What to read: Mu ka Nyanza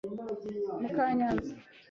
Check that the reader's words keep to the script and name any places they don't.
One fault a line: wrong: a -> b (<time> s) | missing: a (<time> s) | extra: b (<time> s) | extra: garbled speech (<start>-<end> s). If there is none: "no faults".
no faults